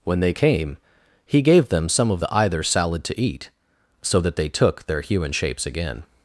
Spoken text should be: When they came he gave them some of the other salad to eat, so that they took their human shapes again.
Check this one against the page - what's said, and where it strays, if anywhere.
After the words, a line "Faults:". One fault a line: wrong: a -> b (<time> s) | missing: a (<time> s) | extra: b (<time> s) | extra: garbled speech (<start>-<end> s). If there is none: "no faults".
When they came he gave them some of the either salad to eat, so that they took their human shapes again.
Faults:
wrong: other -> either (2.3 s)